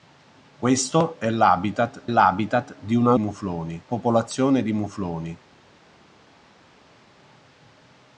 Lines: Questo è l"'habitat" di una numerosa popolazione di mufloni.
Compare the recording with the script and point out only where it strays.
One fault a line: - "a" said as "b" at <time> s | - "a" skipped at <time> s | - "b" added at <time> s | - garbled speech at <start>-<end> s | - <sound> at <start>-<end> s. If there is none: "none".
- "l"'habitat" added at 2.1 s
- "numerosa" said as "mufloni" at 3.2 s